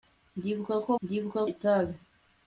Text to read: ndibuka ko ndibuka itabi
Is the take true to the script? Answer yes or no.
yes